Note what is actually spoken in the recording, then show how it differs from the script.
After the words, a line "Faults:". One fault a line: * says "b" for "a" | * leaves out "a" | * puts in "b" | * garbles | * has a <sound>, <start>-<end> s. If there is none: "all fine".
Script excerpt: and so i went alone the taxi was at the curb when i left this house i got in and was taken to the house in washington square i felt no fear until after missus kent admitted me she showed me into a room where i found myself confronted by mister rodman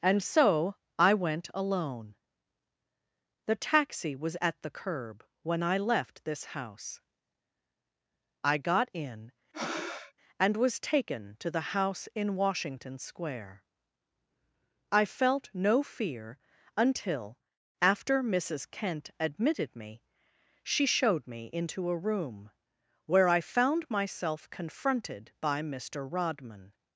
and so i went alone the taxi was at the curb when i left this house i got in and was taken to the house in washington square i felt no fear until after missus kent admitted me she showed me into a room where i found myself confronted by mister rodman
Faults:
* has a breath, 9.5-10.1 s